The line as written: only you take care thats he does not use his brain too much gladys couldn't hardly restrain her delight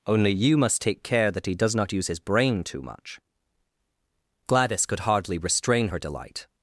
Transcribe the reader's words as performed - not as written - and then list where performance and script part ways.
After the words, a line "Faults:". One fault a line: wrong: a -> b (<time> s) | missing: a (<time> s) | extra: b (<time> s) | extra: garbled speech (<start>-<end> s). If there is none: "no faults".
only you must take care that he does not use his brain too much gladys could hardly restrain her delight
Faults:
extra: must (0.6 s)
wrong: thats -> that (1.3 s)
wrong: couldn't -> could (4.8 s)